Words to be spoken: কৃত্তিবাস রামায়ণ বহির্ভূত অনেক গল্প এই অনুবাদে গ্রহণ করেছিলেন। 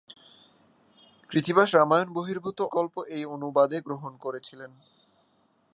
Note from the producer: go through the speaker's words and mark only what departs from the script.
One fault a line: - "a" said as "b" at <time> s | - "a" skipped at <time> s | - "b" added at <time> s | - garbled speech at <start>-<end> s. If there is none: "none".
- "অনেক" skipped at 2.6 s